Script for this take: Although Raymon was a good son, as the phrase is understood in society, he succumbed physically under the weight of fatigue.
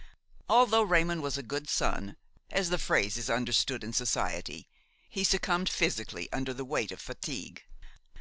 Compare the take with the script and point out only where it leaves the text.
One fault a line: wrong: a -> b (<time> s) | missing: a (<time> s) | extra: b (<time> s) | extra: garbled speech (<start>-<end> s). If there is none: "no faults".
no faults